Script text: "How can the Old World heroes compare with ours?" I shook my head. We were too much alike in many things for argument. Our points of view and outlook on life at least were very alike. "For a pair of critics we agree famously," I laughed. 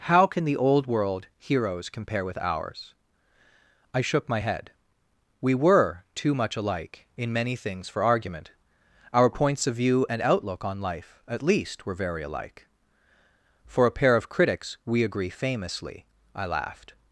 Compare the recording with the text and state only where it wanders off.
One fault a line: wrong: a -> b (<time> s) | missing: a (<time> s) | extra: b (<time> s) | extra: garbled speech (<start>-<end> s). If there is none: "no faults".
no faults